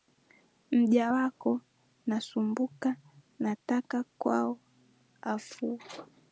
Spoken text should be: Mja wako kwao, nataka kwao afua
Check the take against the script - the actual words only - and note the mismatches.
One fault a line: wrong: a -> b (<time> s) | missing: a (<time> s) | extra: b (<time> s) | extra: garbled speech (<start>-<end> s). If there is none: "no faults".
wrong: kwao -> nasumbuka (2.1 s)